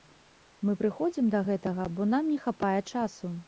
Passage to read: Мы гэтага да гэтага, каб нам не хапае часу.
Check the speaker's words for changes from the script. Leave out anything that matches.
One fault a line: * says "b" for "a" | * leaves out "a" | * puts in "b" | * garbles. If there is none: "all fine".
* says "прыходзім" for "гэтага"
* says "бо" for "каб"